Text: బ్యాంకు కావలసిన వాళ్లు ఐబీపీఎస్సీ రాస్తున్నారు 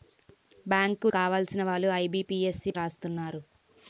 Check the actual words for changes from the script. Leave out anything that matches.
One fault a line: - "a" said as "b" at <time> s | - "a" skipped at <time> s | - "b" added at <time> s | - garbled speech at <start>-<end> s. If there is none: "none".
none